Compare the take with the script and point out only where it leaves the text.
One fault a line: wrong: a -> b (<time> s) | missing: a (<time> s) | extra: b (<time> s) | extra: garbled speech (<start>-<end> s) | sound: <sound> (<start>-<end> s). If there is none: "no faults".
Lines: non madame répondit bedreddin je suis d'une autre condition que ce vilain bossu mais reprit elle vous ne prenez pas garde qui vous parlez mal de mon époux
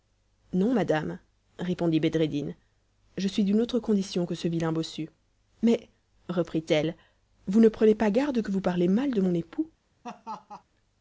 wrong: qui -> que (8.4 s)
sound: laugh (10.0-10.6 s)